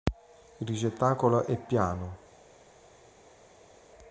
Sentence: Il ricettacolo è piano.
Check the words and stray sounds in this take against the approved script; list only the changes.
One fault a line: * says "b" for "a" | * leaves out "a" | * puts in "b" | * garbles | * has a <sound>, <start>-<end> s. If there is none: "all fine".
all fine